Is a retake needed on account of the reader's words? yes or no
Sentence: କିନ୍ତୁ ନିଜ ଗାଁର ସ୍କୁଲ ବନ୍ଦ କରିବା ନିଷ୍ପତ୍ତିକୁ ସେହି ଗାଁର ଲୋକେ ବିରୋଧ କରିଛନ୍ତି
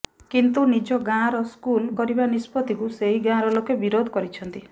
yes